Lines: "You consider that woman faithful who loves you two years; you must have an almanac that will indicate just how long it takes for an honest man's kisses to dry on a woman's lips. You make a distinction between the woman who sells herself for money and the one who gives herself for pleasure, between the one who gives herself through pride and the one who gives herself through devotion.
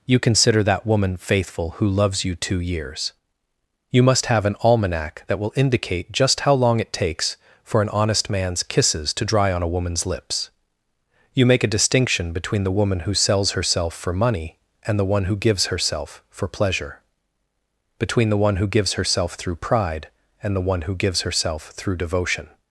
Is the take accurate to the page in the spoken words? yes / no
yes